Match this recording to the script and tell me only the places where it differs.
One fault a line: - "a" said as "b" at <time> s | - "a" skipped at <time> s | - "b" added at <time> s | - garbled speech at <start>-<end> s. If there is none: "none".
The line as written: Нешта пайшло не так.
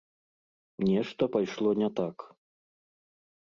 none